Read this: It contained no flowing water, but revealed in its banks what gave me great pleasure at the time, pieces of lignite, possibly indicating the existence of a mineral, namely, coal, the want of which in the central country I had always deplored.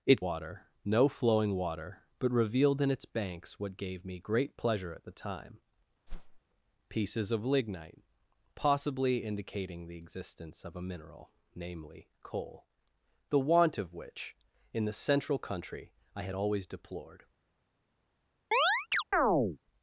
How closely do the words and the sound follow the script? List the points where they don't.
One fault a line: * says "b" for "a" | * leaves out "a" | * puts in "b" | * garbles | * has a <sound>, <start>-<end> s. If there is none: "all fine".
* says "water" for "contained"
* has a whoosh, 6.1-6.4 s
* has a chirp, 18.5-19.6 s